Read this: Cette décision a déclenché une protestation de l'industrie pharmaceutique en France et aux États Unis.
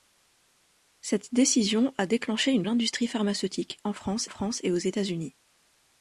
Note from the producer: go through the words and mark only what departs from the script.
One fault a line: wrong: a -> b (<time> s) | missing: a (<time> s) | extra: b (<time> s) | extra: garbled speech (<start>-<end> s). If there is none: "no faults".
missing: protestation de (2.6 s)
extra: France (4.3 s)